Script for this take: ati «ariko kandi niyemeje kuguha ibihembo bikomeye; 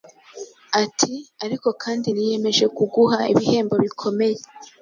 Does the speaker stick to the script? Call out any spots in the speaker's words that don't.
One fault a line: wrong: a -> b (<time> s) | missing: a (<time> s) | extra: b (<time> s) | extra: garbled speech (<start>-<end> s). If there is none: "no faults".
no faults